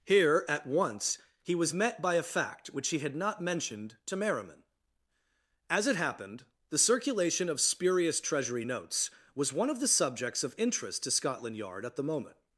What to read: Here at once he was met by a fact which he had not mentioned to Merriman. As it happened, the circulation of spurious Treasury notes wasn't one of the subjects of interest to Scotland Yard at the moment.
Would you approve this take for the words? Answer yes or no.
no